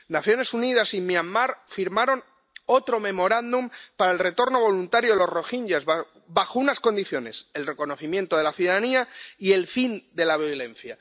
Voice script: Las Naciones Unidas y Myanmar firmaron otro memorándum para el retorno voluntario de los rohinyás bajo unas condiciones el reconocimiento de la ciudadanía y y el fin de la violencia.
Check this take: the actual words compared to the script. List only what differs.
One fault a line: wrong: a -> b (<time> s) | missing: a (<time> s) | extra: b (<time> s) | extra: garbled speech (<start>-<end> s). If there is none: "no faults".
missing: y (9.5 s)